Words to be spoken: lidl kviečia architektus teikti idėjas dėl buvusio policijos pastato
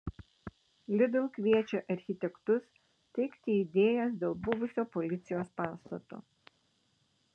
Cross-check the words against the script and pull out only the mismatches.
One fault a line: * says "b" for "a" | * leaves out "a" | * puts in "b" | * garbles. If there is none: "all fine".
all fine